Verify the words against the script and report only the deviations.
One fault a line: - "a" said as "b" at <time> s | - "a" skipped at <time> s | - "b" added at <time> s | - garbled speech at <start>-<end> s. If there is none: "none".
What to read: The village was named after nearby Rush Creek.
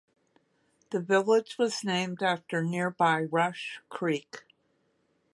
none